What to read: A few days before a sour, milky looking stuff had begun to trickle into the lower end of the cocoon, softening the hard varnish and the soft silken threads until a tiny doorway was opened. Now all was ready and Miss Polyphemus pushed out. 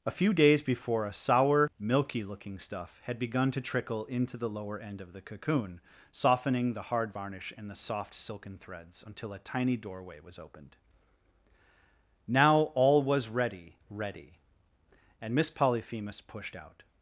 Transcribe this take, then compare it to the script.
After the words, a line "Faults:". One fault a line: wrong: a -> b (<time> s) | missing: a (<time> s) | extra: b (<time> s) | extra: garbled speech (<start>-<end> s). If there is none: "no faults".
A few days before a sour, milky looking stuff had begun to trickle into the lower end of the cocoon, softening the hard varnish and the soft silken threads until a tiny doorway was opened. Now all was ready ready and Miss Polyphemus pushed out.
Faults:
extra: ready (13.9 s)